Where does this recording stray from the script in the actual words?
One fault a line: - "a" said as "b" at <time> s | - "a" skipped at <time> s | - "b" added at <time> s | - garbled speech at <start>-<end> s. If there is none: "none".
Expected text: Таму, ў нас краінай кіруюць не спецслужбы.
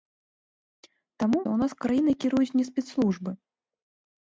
none